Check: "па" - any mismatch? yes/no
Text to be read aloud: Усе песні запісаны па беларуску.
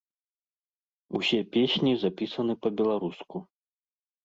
no